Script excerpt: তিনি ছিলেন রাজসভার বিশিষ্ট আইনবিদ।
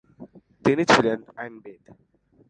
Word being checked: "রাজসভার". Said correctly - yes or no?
no